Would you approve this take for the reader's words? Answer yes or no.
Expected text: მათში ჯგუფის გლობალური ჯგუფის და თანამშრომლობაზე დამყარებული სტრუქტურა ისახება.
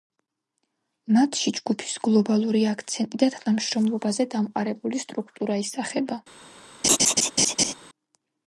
no